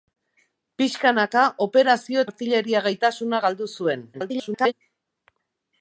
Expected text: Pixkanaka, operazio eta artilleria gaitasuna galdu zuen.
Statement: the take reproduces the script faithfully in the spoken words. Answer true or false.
false